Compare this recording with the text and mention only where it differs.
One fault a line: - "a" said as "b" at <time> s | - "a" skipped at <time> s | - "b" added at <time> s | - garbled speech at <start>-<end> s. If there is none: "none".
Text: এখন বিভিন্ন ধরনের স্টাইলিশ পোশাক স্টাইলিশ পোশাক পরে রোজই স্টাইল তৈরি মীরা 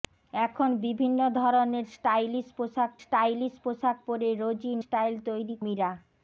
none